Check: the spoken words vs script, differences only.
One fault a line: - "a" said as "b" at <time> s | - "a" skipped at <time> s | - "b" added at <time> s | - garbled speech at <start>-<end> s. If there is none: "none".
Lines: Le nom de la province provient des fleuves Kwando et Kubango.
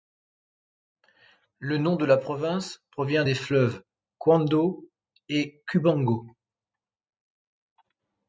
none